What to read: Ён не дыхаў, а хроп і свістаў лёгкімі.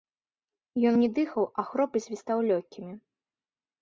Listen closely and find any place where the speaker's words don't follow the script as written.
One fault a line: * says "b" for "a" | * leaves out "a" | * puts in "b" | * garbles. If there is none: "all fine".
all fine